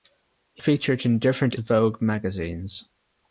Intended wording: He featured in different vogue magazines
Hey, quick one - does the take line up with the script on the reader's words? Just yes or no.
yes